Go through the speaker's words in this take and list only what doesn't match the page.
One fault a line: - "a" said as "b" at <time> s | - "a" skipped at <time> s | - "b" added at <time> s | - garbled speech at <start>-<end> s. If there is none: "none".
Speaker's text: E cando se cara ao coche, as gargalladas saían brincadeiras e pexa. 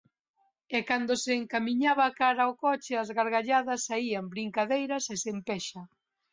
- "encamiñaba" added at 1.4 s
- "sen" added at 5.2 s